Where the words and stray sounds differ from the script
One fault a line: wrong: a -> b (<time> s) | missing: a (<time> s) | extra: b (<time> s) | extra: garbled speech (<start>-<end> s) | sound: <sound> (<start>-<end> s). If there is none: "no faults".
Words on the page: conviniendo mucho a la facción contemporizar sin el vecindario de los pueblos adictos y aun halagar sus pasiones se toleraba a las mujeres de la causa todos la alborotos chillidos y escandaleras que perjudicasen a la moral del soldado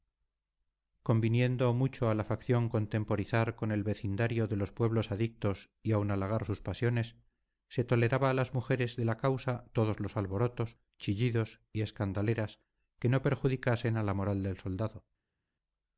wrong: sin -> con (3.6 s)
wrong: la -> los (10.0 s)
extra: no (13.1 s)